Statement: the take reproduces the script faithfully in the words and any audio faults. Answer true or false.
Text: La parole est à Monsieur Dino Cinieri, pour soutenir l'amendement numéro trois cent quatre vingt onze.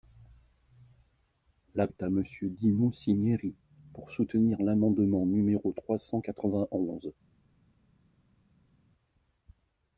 false